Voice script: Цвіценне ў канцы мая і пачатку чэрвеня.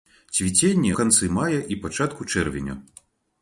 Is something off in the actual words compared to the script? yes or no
yes